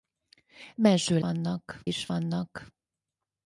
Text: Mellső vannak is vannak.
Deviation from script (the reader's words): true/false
false